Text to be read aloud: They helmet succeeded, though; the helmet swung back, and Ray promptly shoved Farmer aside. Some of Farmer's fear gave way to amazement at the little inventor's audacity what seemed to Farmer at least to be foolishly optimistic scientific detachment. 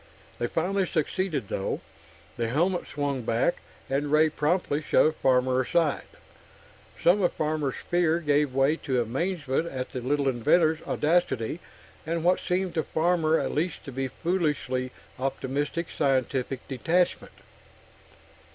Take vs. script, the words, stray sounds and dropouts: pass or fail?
fail